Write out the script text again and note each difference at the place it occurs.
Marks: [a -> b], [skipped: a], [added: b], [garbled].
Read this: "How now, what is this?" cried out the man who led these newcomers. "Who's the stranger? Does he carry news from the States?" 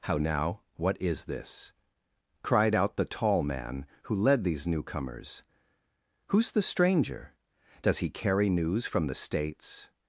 "How now, what is this?" cried out the [added: tall] man who led these newcomers. "Who's the stranger? Does he carry news from the States?"